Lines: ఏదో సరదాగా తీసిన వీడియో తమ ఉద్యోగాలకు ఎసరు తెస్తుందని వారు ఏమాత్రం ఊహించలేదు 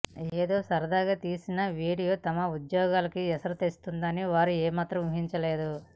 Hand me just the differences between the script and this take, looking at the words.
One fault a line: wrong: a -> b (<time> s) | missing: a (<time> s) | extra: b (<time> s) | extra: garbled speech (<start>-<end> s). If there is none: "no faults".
no faults